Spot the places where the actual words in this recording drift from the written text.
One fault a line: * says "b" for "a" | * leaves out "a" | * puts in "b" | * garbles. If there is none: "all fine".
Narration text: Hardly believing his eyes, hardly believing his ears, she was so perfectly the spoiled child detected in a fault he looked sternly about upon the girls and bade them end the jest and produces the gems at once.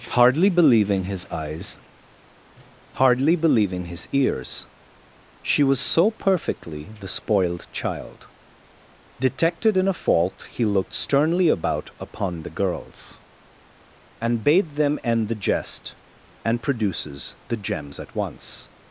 all fine